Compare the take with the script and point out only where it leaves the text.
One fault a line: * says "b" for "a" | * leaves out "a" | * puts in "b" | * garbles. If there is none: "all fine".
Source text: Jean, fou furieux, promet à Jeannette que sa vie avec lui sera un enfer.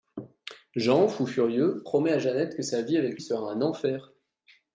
* leaves out "lui"